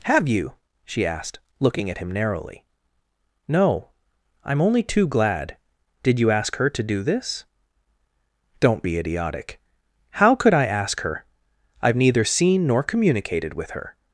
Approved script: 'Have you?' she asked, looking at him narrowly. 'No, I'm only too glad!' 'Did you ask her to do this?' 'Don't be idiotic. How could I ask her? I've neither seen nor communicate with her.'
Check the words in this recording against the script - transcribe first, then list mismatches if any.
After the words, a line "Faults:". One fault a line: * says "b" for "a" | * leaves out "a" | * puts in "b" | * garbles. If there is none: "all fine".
'Have you?' she asked, looking at him narrowly. 'No, I'm only too glad!' 'Did you ask her to do this?' 'Don't be idiotic. How could I ask her? I've neither seen nor communicated with her.'
Faults:
* says "communicated" for "communicate"